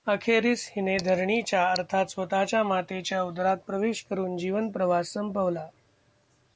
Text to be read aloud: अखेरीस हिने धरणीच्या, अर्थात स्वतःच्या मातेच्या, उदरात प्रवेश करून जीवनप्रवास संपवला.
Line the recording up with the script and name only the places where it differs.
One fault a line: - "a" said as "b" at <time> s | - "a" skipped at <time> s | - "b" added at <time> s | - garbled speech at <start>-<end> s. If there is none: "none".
none